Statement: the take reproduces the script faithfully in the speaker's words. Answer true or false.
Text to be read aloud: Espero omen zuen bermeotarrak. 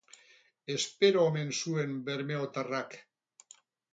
true